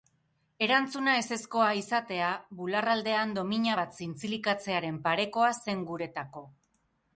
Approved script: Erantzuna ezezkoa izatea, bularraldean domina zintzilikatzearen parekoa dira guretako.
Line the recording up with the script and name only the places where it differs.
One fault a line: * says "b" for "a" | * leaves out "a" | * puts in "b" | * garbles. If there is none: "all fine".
* puts in "bat"
* says "zen" for "dira"